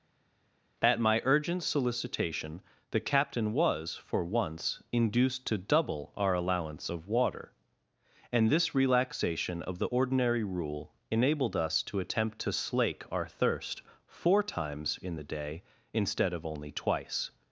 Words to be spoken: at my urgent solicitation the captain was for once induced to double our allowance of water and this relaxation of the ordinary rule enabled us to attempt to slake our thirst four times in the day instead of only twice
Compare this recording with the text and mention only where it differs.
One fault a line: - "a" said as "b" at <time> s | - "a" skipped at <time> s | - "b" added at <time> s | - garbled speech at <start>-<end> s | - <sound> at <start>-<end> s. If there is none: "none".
none